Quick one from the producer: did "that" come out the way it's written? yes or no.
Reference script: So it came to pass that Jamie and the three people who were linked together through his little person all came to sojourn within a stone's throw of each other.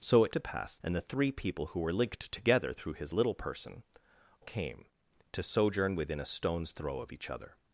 no